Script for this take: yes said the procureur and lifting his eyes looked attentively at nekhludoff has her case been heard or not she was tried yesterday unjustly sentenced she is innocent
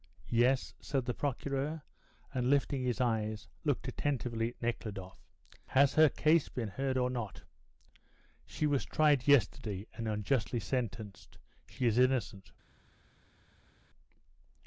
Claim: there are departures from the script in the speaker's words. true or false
true